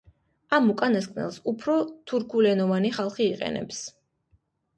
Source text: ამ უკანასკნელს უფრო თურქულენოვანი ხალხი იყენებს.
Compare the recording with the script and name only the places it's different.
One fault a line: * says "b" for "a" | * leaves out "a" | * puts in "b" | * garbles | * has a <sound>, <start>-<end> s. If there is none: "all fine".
all fine